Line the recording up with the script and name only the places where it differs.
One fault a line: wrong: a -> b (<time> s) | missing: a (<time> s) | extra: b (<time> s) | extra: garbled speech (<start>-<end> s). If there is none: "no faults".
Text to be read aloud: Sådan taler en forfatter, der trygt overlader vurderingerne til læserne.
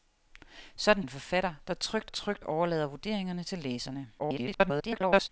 missing: taler (1.0 s)
extra: trygt (2.1 s)
extra: garbled speech (4.2-5.3 s)